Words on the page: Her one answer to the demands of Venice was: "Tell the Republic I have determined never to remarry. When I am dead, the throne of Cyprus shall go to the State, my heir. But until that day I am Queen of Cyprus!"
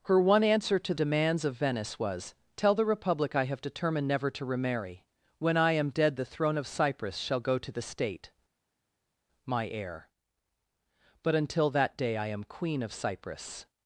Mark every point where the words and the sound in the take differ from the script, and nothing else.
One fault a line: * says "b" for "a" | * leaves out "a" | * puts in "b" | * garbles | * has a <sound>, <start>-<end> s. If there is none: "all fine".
* leaves out "the"